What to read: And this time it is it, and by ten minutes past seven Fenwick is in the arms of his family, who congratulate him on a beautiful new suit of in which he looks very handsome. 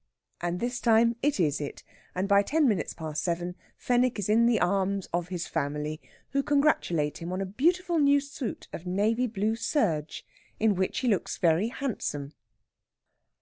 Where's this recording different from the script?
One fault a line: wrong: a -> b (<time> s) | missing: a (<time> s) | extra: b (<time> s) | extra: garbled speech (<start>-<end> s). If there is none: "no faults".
extra: navy blue serge (8.9 s)